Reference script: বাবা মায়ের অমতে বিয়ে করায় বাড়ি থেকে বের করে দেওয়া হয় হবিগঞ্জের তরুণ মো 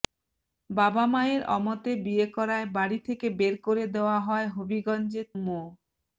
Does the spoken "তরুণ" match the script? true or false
false